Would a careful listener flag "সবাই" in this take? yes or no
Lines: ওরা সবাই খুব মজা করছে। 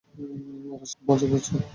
yes